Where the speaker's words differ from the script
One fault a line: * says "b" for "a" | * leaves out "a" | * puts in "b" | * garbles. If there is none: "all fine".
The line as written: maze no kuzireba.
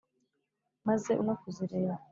all fine